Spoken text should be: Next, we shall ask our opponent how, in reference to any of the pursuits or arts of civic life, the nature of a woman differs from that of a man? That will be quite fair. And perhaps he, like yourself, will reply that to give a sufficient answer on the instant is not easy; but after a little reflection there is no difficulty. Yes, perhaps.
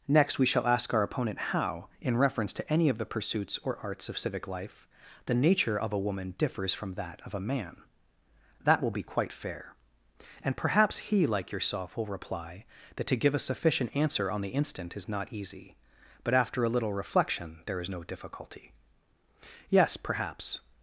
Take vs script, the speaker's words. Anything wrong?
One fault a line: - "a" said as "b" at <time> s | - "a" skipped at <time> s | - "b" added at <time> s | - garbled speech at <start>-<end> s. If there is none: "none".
none